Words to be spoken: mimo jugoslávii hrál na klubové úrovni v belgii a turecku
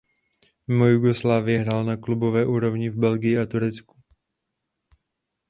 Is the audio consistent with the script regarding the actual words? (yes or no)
yes